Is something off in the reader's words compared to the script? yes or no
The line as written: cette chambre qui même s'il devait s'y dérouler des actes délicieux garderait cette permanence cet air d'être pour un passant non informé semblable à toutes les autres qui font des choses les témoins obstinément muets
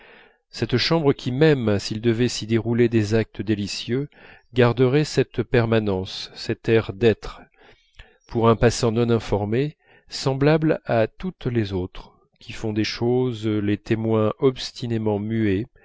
no